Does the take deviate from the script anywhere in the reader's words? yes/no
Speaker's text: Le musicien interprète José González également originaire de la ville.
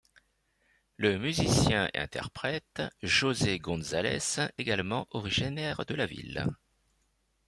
no